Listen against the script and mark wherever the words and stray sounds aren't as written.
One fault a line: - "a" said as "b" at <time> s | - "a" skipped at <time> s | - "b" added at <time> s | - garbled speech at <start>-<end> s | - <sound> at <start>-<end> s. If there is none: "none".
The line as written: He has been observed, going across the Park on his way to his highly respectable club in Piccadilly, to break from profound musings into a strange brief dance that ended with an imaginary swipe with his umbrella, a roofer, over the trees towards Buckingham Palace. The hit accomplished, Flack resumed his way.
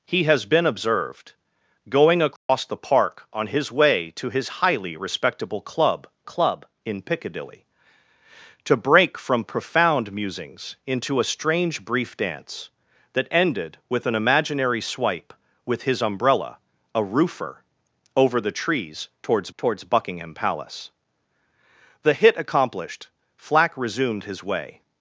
- dropout at 2.4-2.5 s
- "club" added at 6.2 s
- "towards" added at 19.6 s